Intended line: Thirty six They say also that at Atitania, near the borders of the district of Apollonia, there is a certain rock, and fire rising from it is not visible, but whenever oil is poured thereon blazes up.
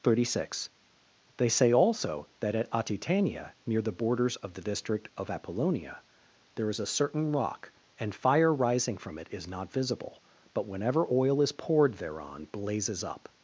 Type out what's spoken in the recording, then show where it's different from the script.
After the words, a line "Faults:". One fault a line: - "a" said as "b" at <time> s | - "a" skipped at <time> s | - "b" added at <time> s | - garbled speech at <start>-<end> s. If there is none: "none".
Thirty six They say also that at Atitania, near the borders of the district of Apollonia, there is a certain rock, and fire rising from it is not visible, but whenever oil is poured thereon blazes up.
Faults:
none